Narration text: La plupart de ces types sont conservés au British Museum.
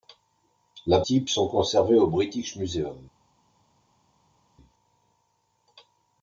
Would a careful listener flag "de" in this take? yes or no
yes